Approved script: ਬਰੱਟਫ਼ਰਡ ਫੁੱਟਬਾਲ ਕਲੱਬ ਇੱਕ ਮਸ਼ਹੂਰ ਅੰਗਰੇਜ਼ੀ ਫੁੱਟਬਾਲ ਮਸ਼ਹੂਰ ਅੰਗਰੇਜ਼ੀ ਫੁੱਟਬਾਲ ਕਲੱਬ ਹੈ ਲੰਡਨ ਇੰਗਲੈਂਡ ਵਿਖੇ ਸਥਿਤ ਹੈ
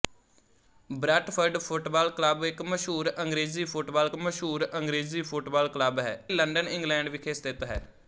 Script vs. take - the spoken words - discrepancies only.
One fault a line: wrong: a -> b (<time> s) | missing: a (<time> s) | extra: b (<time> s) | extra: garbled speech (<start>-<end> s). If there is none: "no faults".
no faults